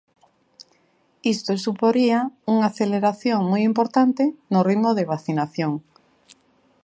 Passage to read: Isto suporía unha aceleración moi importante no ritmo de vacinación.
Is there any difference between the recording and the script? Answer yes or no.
no